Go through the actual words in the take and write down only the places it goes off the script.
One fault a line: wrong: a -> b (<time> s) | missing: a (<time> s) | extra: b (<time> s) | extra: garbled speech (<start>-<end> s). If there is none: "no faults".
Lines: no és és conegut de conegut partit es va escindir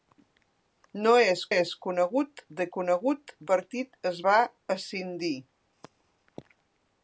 no faults